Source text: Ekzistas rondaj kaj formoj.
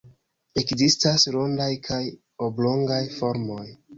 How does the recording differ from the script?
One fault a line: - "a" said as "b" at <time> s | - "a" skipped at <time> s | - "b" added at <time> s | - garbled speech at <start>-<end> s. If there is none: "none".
- "oblongaj" added at 2.5 s